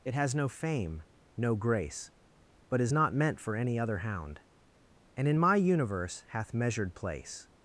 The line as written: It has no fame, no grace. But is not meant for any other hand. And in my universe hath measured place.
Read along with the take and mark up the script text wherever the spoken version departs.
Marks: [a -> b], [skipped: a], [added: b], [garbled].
It has no fame, no grace. But is not meant for any other [hand. -> hound] And in my universe hath measured place.